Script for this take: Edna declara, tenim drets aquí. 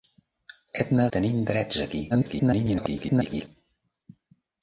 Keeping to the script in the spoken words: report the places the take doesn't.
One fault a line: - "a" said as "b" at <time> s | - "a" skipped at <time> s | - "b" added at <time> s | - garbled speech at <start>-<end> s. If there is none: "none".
- "declara" skipped at 1.1 s
- garbled speech at 2.1-3.5 s